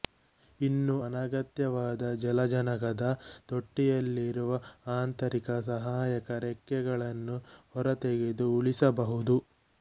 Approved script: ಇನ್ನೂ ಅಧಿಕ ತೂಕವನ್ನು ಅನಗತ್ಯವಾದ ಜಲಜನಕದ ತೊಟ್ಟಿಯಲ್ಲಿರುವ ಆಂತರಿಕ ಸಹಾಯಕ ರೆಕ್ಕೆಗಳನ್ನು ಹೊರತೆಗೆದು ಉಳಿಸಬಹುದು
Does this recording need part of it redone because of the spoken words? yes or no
yes